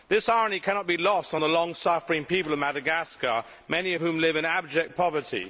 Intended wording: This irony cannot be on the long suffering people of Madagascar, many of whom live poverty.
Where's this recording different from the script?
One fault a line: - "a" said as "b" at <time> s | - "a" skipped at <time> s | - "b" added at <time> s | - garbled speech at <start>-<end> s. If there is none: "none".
- "lost" added at 1.0 s
- "in abject" added at 4.4 s